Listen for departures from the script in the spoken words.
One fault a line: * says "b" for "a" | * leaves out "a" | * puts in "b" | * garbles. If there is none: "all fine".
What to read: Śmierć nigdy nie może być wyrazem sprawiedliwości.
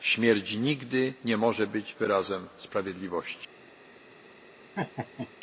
all fine